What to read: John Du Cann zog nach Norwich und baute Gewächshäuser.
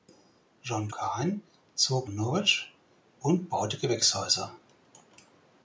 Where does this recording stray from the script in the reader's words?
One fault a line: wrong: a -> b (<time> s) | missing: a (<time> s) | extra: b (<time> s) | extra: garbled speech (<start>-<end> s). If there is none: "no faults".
missing: Du (0.9 s)
missing: nach (2.1 s)